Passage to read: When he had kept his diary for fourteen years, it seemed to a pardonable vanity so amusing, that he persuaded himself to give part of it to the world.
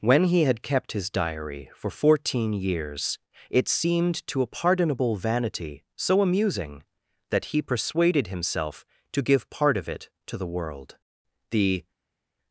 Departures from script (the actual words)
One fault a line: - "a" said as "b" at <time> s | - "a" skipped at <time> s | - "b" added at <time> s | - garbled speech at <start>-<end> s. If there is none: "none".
- "The" added at 11.5 s